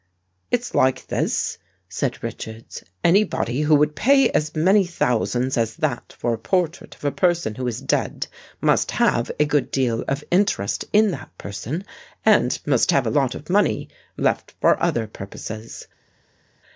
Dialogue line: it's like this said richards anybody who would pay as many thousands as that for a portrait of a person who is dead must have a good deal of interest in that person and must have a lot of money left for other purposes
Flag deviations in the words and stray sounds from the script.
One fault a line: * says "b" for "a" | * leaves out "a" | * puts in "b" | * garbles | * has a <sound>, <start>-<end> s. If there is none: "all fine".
all fine